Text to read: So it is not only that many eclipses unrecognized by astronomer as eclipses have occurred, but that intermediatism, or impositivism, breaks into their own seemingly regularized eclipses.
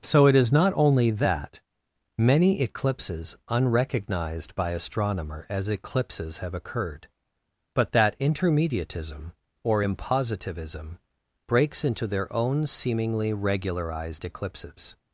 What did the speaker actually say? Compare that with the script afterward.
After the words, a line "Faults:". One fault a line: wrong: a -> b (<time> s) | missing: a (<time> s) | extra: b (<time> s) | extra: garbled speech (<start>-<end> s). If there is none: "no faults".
So it is not only that many eclipses unrecognized by astronomer as eclipses have occurred, but that intermediatism, or impositivism, breaks into their own seemingly regularized eclipses.
Faults:
no faults